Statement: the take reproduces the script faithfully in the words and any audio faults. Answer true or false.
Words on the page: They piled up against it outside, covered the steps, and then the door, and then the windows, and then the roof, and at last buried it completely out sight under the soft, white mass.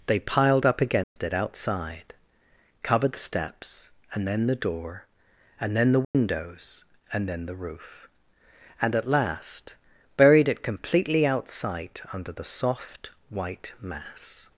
false